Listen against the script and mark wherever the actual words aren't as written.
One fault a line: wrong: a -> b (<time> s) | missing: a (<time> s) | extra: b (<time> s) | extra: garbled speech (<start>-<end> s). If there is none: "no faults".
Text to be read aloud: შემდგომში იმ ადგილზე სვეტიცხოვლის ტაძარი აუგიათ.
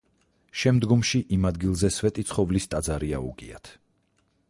no faults